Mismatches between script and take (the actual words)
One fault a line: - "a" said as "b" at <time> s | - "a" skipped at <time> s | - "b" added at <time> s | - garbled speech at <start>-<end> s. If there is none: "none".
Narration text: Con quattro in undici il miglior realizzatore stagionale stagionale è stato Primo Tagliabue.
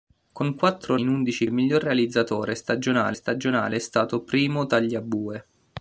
none